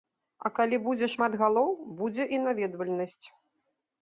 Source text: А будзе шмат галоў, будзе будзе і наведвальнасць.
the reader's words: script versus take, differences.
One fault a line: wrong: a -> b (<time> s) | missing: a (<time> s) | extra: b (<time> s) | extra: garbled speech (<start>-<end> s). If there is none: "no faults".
extra: калі (0.6 s)
missing: будзе (2.3 s)